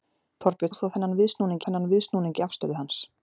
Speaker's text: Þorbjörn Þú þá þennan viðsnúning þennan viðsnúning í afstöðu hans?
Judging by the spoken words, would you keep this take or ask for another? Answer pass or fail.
pass